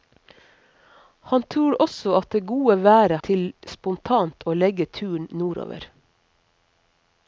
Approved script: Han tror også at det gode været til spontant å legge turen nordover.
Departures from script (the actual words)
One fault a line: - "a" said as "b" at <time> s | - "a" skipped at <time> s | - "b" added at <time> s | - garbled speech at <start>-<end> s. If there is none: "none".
none